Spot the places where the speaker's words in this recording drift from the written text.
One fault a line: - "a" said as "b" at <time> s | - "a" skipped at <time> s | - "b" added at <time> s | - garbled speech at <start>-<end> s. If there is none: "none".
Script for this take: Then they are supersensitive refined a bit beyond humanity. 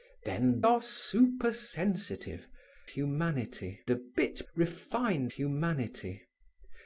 - "they" skipped at 0.6 s
- "refined" said as "humanity" at 2.8 s
- "beyond" said as "refined" at 4.5 s